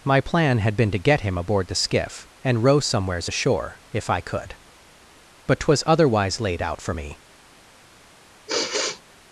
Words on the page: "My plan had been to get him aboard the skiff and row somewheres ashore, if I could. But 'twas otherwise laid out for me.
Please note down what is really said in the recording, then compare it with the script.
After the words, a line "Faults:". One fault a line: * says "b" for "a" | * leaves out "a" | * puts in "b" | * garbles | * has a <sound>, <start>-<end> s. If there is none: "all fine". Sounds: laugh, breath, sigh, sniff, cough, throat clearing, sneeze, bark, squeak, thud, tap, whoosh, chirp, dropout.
"My plan had been to get him aboard the skiff and row somewheres ashore, if I could. But 'twas otherwise laid out for me.
Faults:
* has a sigh, 8.5-9.0 s